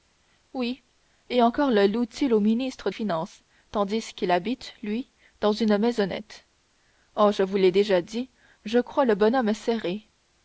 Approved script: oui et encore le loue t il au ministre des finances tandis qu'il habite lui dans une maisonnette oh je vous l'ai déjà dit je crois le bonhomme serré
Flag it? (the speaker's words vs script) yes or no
yes